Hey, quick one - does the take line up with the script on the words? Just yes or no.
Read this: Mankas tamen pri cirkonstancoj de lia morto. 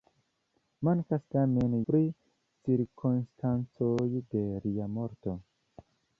yes